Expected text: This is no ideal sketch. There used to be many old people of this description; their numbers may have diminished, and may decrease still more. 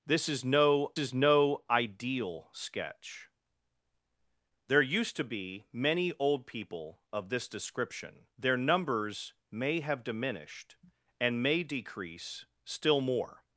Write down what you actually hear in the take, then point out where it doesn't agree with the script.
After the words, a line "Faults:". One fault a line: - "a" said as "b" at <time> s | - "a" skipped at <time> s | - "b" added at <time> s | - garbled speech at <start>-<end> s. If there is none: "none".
This is no is no ideal sketch. There used to be many old people of this description; their numbers may have diminished, and may decrease still more.
Faults:
- "is no" added at 1.0 s